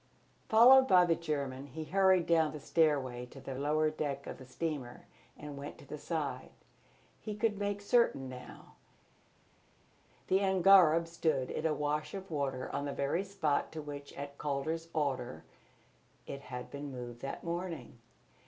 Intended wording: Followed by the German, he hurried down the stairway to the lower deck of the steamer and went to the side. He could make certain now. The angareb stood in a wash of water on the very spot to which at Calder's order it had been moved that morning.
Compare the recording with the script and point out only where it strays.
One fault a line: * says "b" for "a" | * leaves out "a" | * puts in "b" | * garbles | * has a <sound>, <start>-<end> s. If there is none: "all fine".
all fine